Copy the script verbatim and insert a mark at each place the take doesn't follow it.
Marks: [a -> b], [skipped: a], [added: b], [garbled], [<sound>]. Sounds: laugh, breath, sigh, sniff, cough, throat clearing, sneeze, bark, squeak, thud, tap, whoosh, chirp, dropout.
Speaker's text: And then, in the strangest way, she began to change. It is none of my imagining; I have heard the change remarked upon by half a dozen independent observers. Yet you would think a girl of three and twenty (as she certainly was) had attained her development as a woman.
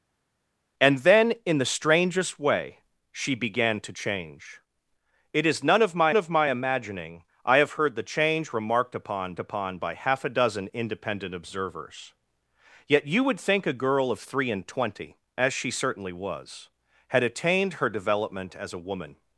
And then, in the strangest way, she began to change. It is none of my [added: of my] imagining; I have heard the change remarked upon [added: upon] by half a dozen independent observers. Yet you would think a girl of three and twenty (as she certainly was) had attained her development as a woman.